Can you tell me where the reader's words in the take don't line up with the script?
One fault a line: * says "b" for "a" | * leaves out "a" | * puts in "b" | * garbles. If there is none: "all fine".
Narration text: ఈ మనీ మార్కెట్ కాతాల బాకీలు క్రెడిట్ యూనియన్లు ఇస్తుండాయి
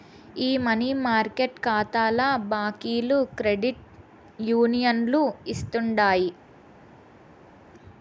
all fine